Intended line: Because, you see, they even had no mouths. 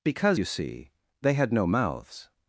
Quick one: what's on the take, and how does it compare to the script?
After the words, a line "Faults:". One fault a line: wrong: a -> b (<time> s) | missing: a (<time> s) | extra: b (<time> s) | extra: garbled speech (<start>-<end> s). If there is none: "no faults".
Because, you see, they had no mouths.
Faults:
missing: even (1.3 s)